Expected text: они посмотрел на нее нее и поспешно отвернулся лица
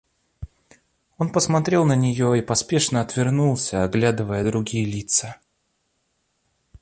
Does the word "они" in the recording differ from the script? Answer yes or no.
yes